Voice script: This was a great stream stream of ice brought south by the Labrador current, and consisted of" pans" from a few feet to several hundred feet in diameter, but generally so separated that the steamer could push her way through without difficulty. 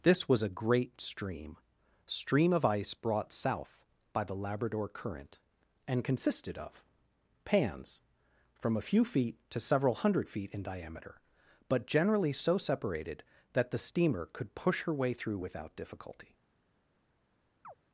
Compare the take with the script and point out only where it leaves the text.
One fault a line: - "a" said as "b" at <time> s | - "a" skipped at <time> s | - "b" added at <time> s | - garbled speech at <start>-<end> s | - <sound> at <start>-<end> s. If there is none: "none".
- chirp at 17.6-17.7 s